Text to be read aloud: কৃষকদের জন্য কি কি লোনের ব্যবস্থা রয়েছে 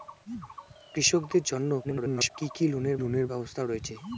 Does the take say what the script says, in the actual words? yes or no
no